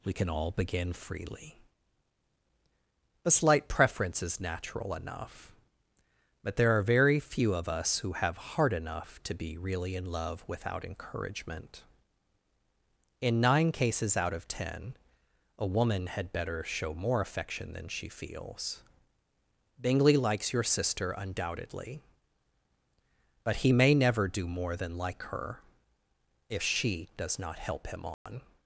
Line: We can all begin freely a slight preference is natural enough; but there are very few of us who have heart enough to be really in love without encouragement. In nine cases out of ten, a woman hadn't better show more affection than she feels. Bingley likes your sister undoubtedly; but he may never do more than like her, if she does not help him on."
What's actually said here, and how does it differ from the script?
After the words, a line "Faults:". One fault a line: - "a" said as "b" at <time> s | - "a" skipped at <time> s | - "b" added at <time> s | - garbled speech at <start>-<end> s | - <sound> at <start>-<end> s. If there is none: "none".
We can all begin freely a slight preference is natural enough; but there are very few of us who have heart enough to be really in love without encouragement. In nine cases out of ten, a woman had better show more affection than she feels. Bingley likes your sister undoubtedly; but he may never do more than like her, if she does not help him on."
Faults:
- "hadn't" said as "had" at 16.1 s
- dropout at 28.1-28.3 s